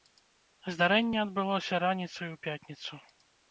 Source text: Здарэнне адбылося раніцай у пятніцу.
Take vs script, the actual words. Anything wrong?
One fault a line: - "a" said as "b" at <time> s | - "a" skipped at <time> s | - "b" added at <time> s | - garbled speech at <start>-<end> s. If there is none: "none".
none